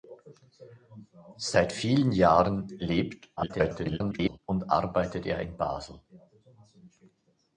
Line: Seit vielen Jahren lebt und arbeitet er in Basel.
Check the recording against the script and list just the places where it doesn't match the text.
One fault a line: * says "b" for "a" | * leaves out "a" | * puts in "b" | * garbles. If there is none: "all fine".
* garbles